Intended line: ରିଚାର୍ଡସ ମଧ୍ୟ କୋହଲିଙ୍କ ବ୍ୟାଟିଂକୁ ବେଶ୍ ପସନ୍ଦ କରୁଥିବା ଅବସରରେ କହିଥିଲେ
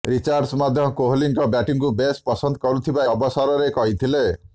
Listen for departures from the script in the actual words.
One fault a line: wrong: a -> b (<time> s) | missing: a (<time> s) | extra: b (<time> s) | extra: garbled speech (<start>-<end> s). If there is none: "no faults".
no faults